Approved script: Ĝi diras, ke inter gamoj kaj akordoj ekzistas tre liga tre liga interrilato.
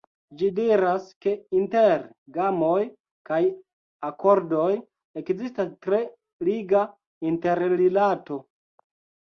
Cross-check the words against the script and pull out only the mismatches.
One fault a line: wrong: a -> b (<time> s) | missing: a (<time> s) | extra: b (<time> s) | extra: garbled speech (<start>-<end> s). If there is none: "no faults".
missing: tre liga (6.9 s)